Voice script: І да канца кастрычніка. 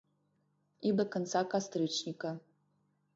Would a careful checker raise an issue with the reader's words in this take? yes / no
no